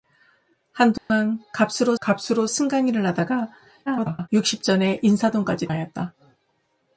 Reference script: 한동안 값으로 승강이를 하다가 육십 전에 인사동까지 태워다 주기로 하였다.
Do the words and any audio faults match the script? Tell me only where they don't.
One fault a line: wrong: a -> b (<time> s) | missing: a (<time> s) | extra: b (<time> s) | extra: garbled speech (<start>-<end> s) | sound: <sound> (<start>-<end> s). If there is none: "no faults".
sound: dropout (1.0-1.1 s)
extra: 값으로 (2.0 s)
extra: garbled speech (3.9-4.3 s)
missing: 태워다 주기로 (5.7 s)